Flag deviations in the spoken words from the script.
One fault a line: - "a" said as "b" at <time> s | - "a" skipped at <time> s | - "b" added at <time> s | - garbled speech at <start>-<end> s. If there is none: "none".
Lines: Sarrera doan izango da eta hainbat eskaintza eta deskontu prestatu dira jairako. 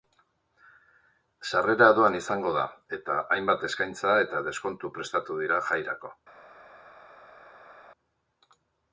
none